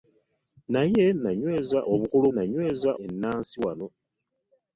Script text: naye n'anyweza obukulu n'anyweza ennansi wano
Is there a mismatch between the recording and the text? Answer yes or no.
no